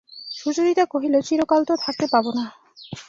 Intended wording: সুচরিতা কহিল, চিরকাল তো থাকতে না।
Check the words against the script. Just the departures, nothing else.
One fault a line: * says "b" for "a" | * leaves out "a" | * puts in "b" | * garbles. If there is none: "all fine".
* puts in "পাব"